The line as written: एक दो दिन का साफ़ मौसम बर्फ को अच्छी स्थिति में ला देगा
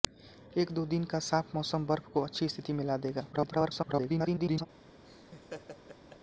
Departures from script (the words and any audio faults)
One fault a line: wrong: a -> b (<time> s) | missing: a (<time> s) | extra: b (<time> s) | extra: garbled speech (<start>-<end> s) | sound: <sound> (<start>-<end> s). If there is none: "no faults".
extra: garbled speech (3.3-4.7 s)
sound: laugh (5.0-6.2 s)